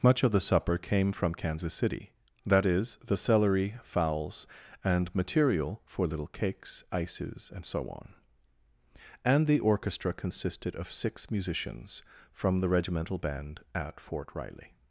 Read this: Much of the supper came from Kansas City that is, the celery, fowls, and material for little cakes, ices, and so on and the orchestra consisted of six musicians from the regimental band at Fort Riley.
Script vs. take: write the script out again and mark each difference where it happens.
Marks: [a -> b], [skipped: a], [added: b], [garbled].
Much of the supper came from Kansas City that is, the celery, fowls, and material for little cakes, ices, and so on and the orchestra consisted of six musicians from the regimental band at Fort Riley.